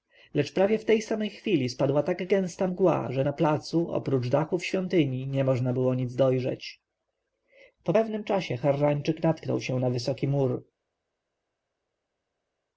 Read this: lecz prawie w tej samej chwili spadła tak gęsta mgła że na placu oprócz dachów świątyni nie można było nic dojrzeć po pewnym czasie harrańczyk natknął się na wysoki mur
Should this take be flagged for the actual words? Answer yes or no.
no